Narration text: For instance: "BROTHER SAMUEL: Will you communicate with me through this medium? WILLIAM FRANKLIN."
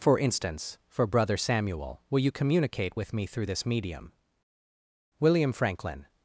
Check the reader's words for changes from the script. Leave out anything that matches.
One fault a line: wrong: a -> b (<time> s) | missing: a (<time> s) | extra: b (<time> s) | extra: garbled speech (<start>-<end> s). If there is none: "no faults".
extra: for (0.9 s)